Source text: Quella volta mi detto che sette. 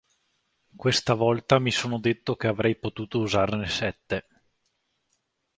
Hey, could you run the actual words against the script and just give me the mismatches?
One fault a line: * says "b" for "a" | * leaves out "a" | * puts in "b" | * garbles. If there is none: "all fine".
* says "Questa" for "Quella"
* puts in "sono"
* puts in "avrei potuto usarne"